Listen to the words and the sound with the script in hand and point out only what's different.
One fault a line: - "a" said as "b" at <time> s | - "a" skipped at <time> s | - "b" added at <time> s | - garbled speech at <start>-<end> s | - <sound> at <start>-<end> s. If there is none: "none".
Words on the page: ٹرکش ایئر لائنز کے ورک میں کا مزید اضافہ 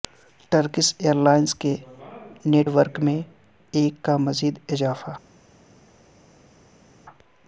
- "نیٹ" added at 2.5 s
- "ایک" added at 3.7 s